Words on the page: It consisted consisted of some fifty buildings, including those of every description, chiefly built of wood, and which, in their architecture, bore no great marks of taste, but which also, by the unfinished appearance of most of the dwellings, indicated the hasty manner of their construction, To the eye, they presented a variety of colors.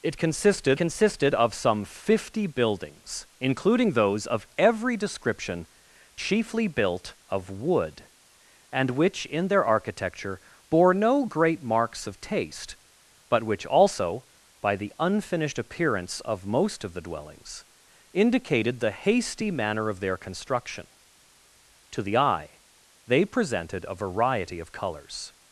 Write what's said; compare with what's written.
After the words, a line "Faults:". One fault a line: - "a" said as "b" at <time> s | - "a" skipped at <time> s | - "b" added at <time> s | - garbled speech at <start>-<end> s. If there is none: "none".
It consisted consisted of some fifty buildings, including those of every description, chiefly built of wood, and which, in their architecture, bore no great marks of taste, but which also, by the unfinished appearance of most of the dwellings, indicated the hasty manner of their construction, To the eye, they presented a variety of colors.
Faults:
none